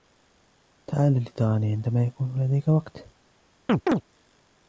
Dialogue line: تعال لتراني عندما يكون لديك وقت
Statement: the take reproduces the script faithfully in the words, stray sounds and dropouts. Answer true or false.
false